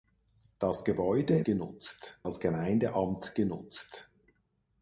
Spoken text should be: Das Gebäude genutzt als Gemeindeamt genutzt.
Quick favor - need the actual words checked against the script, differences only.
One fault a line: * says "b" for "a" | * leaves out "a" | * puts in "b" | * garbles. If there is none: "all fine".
all fine